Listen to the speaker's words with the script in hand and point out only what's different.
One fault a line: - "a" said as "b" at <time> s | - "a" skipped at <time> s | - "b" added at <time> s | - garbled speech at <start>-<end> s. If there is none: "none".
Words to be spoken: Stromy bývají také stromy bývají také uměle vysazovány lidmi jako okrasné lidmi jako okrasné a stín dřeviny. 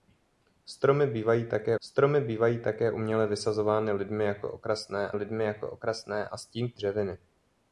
none